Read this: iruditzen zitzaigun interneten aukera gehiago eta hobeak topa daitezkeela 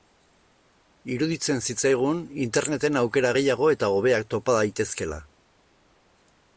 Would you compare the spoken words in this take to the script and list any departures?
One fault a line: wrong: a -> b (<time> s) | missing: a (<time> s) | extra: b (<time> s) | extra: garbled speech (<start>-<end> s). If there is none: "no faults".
no faults